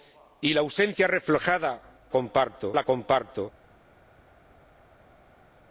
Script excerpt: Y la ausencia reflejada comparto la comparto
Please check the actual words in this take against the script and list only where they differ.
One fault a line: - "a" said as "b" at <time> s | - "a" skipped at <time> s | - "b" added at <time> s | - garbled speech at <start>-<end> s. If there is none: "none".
none